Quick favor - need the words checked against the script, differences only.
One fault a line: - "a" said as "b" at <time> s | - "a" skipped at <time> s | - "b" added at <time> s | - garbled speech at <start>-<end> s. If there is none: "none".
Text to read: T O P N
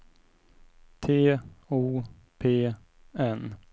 none